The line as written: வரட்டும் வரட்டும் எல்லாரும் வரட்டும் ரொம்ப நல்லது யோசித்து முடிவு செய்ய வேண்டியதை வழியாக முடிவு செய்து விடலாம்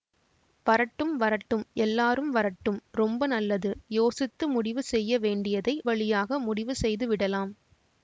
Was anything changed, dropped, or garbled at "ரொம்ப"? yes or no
no